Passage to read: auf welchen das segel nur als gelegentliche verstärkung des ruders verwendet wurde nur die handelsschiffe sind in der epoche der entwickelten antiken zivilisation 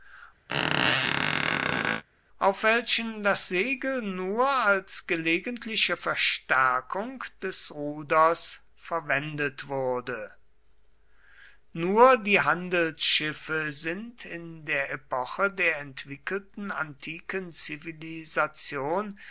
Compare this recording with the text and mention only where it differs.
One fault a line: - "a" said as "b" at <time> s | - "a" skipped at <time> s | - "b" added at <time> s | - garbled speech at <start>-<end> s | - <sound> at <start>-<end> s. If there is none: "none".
- squeak at 0.5-2.0 s